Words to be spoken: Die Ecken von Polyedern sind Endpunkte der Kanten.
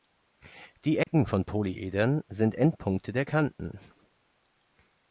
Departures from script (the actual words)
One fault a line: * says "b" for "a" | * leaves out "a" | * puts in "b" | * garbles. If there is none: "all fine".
all fine